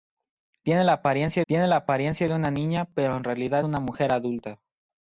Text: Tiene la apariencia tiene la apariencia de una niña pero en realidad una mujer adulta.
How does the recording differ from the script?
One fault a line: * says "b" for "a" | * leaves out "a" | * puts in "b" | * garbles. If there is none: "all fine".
all fine